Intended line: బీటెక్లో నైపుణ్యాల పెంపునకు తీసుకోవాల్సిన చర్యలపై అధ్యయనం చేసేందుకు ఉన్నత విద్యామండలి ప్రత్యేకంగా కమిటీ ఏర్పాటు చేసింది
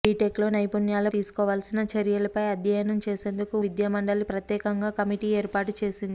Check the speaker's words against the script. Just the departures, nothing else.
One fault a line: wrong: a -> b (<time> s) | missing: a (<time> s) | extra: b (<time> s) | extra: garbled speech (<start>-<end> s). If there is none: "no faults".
missing: పెంపునకు (1.1 s)
missing: ఉన్నత (3.5 s)